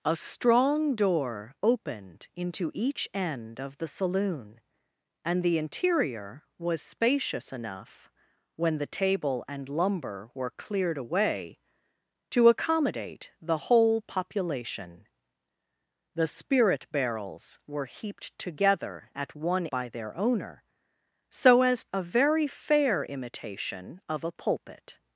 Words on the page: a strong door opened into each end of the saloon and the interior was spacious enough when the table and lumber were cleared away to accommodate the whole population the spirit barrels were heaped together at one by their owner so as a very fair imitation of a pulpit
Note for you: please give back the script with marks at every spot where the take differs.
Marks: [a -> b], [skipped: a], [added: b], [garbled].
a strong door opened into each end of the saloon and the interior was spacious enough when the table and lumber were cleared away to accommodate the whole population the spirit barrels were heaped together at one by their owner so as a very fair imitation of a pulpit